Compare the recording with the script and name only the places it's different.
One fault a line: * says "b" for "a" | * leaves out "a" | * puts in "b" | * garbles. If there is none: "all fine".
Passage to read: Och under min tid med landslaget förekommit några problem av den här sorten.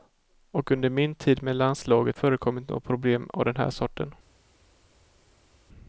all fine